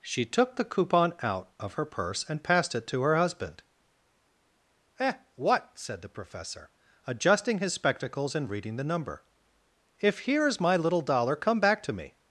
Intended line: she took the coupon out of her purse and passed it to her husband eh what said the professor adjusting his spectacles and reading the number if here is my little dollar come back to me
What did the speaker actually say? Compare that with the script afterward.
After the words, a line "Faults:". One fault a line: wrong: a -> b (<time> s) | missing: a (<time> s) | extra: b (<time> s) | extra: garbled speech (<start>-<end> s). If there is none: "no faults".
she took the coupon out of her purse and passed it to her husband eh what said the professor adjusting his spectacles and reading the number if here is my little dollar come back to me
Faults:
no faults